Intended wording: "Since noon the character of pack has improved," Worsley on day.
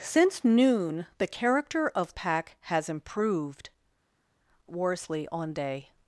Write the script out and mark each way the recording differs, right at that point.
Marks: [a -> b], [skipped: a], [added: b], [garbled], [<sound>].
"Since noon the character of pack has improved," Worsley on day.